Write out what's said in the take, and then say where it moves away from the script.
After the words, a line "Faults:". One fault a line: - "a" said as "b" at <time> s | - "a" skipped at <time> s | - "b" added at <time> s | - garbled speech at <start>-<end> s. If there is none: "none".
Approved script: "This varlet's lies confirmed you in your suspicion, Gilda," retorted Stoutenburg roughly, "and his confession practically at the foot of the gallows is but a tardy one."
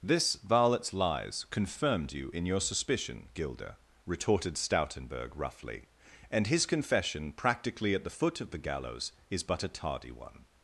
"This varlet's lies confirmed you in your suspicion, Gilda," retorted Stoutenburg roughly, "and his confession practically at the foot of the gallows is but a tardy one."
Faults:
none